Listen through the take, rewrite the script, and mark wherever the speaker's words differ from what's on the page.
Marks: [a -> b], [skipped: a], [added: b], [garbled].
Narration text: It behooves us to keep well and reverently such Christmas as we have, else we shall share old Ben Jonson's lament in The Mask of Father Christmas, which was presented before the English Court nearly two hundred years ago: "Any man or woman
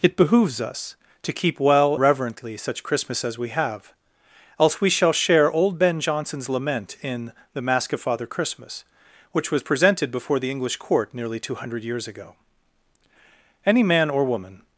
It behooves us to keep well [skipped: and] reverently such Christmas as we have, else we shall share old Ben Jonson's lament in The Mask of Father Christmas, which was presented before the English Court nearly two hundred years ago: "Any man or woman